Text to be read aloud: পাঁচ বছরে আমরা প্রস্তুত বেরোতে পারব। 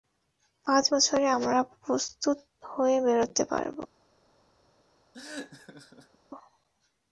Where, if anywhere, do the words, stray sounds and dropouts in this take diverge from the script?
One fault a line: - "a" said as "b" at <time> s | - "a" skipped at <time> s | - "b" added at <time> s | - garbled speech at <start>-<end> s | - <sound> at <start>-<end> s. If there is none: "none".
- "হয়ে" added at 2.6 s
- laugh at 5.1-6.2 s